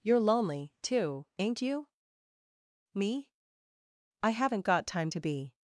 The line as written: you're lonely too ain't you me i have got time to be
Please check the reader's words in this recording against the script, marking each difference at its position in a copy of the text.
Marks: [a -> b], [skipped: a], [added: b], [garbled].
you're lonely too ain't you me i [have -> haven't] got time to be